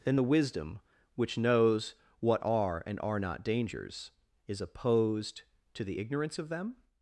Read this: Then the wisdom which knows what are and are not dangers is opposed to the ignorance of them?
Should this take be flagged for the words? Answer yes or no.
no